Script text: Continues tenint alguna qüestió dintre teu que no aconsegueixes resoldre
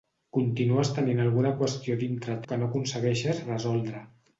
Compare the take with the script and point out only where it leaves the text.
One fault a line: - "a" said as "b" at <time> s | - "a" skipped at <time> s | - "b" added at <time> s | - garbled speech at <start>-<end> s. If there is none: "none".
- "teu" skipped at 2.4 s